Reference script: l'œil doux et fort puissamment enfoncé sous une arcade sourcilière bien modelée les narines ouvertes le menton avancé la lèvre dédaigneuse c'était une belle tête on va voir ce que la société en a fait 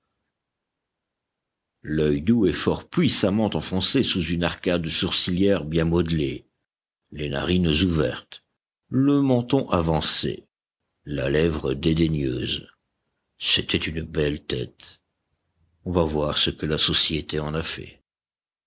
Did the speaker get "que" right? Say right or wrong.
right